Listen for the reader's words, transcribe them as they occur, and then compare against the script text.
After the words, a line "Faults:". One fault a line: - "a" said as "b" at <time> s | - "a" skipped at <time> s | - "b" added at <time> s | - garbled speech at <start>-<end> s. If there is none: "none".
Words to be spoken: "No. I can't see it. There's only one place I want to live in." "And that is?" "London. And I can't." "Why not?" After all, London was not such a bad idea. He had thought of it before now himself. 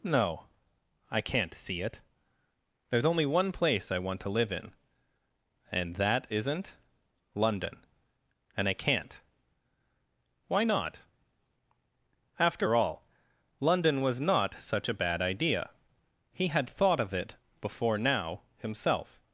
"No. I can't see it. There's only one place I want to live in." "And that isn't?" "London. And I can't." "Why not?" After all, London was not such a bad idea. He had thought of it before now himself.
Faults:
- "is" said as "isn't" at 6.3 s